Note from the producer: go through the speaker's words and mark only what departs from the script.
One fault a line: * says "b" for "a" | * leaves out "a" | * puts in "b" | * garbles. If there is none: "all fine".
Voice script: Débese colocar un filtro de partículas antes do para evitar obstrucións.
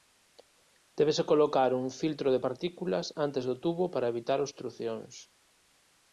* puts in "tubo"